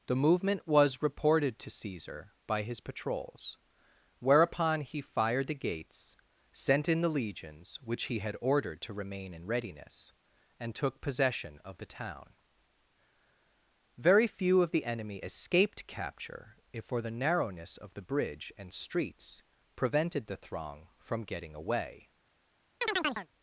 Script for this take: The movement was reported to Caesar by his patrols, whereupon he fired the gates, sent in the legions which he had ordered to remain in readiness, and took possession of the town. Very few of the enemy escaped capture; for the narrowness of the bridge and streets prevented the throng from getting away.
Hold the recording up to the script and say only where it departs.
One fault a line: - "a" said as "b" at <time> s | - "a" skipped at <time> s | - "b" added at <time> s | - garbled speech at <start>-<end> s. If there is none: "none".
- "if" added at 16.7 s